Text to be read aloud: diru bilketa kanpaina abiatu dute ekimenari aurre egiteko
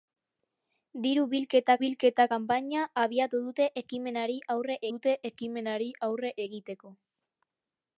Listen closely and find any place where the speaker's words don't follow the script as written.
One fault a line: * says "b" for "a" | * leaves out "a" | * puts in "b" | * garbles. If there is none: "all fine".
* puts in "bilketa"
* puts in "dute ekimenari aurre"